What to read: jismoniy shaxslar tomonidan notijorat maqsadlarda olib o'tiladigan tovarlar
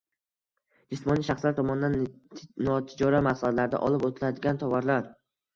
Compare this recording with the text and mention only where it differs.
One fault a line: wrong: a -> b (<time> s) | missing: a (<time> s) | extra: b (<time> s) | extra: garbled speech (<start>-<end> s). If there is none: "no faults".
no faults